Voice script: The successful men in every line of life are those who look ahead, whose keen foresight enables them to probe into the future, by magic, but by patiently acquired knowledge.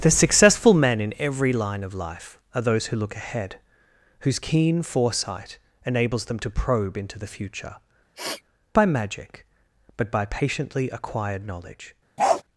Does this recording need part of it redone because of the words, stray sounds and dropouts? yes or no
yes